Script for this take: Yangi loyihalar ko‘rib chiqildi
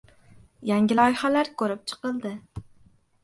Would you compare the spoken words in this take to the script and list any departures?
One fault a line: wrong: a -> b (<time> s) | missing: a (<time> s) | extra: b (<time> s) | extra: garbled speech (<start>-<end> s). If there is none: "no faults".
no faults